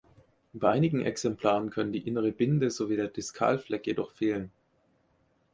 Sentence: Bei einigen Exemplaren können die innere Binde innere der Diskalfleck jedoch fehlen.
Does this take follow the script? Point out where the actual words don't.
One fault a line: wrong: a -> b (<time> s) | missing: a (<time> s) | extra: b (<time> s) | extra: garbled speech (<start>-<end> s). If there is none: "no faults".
wrong: innere -> sowie (2.7 s)